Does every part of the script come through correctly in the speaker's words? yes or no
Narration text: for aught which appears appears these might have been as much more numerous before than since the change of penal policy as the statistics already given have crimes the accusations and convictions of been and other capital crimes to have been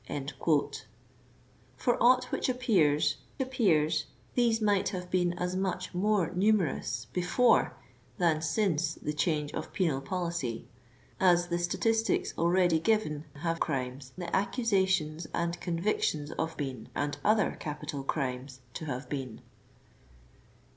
yes